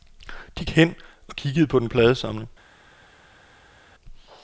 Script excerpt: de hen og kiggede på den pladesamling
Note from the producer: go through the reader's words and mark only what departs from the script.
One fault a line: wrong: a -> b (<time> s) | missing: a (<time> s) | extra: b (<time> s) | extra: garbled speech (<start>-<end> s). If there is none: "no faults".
no faults